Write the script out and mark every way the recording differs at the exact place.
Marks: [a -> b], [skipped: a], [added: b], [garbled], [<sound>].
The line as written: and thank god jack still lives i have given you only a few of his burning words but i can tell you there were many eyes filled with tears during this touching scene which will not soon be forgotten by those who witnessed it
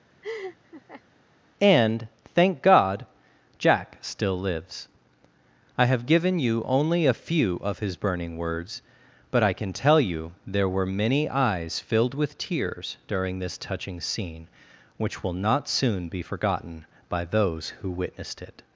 [laugh] and thank god jack still lives i have given you only a few of his burning words but i can tell you there were many eyes filled with tears during this touching scene which will not soon be forgotten by those who witnessed it